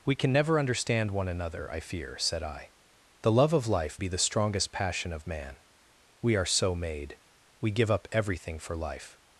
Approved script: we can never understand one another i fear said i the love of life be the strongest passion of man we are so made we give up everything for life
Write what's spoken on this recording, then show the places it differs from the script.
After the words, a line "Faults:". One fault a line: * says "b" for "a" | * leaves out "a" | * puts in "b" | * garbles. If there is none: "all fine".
we can never understand one another i fear said i the love of life be the strongest passion of man we are so made we give up everything for life
Faults:
all fine